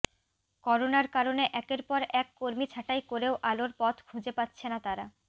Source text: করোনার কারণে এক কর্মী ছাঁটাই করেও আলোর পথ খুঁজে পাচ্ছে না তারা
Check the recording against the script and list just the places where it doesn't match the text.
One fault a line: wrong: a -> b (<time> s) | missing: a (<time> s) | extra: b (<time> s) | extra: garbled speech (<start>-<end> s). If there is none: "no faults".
extra: একের পর (1.5 s)